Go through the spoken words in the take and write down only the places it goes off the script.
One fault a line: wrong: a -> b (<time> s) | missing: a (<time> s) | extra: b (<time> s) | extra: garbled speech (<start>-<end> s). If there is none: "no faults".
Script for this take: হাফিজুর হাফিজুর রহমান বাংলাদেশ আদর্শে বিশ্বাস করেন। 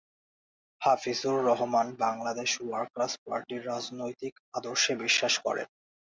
missing: হাফিজুর (1.4 s)
extra: ওয়ার্কার্স পার্টির রাজনৈতিক (2.6 s)